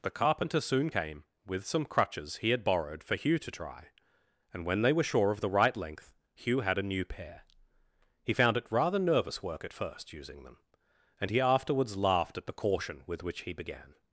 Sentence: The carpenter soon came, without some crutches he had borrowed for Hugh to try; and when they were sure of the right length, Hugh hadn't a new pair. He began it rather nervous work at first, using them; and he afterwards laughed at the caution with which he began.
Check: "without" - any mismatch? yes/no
yes